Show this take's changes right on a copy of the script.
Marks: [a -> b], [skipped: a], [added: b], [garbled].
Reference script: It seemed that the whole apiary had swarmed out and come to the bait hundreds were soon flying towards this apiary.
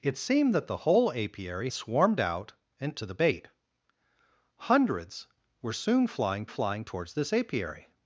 It seemed that the whole apiary [skipped: had] swarmed out and [skipped: come] to the bait hundreds were soon flying [added: flying] towards this apiary.